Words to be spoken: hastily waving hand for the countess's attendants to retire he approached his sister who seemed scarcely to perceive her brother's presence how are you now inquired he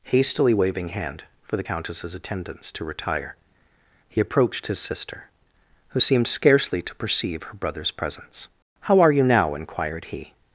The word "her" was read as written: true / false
true